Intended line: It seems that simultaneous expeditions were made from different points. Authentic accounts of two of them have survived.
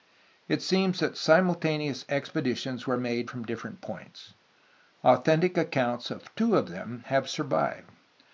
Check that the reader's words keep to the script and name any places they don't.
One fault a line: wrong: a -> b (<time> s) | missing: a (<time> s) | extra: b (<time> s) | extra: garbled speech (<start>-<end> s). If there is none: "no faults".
no faults